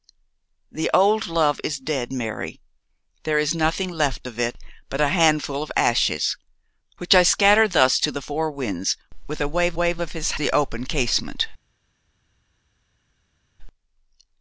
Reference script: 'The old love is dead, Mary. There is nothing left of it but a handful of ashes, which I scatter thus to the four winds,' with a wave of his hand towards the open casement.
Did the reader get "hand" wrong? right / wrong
wrong